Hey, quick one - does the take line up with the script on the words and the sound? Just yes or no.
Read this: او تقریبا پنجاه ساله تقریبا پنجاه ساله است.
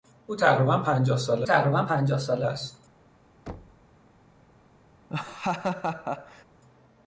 no